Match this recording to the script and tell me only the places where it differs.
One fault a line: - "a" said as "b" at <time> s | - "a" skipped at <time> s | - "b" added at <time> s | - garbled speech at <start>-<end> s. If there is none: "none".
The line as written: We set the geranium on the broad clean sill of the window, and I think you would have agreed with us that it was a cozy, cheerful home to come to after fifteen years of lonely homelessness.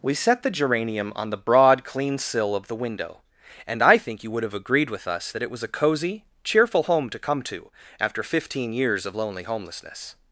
none